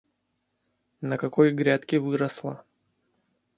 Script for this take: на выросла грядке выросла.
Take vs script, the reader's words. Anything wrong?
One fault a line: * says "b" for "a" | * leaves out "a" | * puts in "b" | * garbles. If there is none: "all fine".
* says "какой" for "выросла"